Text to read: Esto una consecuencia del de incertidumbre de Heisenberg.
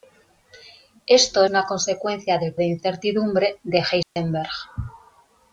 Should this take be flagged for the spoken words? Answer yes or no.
no